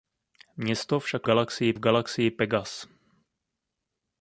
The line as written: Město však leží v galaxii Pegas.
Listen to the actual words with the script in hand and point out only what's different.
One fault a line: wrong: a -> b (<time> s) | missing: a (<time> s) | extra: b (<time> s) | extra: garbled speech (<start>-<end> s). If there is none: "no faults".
wrong: leží -> galaxii (1.2 s)